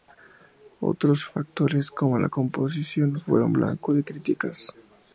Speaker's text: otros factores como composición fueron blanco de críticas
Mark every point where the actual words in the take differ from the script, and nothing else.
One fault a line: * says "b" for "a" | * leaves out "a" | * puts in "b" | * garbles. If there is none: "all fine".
* puts in "la"